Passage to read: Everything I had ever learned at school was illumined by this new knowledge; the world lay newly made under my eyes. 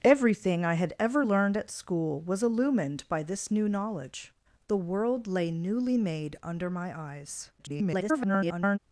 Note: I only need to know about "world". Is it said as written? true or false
true